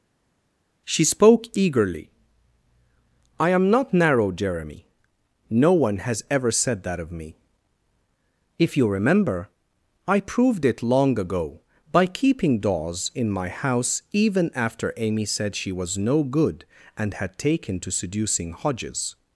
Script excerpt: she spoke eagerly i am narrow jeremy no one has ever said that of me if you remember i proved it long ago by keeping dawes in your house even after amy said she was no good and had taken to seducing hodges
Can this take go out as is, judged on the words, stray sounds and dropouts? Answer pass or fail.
fail